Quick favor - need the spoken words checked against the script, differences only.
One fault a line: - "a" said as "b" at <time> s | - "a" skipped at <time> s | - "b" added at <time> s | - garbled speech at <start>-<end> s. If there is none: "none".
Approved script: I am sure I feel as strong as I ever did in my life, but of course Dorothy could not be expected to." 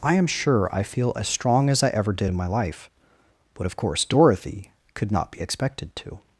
none